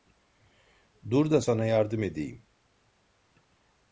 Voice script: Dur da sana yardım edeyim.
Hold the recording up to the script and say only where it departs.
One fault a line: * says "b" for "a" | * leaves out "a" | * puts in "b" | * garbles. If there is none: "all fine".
all fine